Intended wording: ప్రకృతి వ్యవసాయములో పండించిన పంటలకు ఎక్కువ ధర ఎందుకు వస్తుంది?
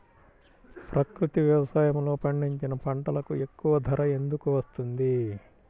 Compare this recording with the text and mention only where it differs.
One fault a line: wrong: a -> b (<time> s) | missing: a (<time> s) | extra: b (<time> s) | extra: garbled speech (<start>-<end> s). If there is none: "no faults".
no faults